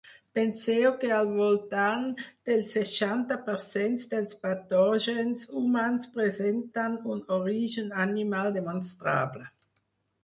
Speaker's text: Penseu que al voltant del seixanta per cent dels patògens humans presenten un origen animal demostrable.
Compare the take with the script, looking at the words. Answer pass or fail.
pass